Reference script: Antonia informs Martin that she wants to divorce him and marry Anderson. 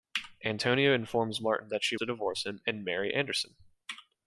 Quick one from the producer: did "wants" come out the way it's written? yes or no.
no